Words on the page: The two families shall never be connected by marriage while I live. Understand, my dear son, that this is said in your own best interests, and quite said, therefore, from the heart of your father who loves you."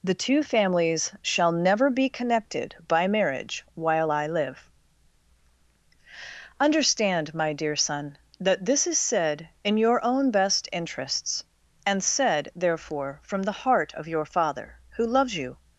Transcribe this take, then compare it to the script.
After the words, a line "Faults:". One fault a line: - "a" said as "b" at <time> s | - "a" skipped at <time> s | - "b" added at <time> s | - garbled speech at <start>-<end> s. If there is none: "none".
The two families shall never be connected by marriage while I live. Understand, my dear son, that this is said in your own best interests, and said, therefore, from the heart of your father who loves you."
Faults:
- "quite" skipped at 12.0 s